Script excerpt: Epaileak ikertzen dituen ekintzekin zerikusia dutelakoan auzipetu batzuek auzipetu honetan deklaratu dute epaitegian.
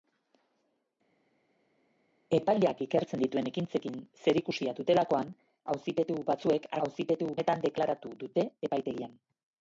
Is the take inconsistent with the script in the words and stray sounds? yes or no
no